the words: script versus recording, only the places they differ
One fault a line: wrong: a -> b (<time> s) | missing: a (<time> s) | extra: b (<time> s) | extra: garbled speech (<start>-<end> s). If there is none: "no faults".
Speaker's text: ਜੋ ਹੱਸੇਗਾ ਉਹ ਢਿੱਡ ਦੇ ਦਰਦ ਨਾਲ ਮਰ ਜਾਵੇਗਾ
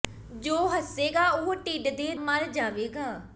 missing: ਦਰਦ ਨਾਲ (2.1 s)